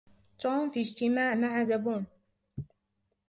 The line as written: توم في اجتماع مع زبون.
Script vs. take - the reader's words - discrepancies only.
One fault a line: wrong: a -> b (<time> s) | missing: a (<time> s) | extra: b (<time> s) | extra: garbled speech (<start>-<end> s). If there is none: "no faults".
no faults